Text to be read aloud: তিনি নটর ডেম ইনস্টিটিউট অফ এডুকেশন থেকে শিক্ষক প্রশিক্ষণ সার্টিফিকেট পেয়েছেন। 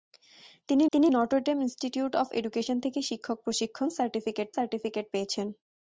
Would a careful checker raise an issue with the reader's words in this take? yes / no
yes